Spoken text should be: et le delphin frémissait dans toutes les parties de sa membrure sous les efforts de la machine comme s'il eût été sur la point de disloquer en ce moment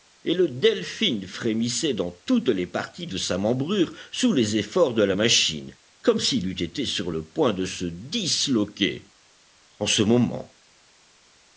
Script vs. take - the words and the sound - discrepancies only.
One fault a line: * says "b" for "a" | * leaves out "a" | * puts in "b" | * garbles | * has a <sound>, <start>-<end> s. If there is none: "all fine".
* says "le" for "la"
* puts in "se"